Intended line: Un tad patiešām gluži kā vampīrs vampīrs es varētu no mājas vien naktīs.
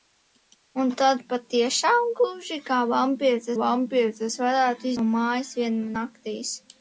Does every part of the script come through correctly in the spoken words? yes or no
yes